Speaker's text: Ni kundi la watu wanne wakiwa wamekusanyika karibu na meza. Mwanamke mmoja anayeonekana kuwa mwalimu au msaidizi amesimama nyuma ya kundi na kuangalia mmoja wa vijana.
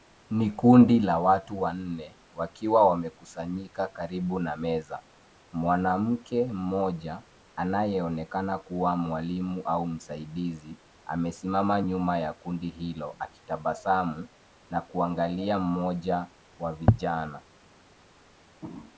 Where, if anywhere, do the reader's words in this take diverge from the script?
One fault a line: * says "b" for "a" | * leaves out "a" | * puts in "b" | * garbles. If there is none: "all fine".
* puts in "hilo akitabasamu"